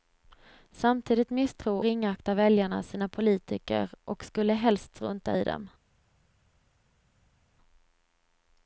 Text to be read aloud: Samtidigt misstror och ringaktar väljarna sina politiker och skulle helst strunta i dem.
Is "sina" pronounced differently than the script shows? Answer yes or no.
no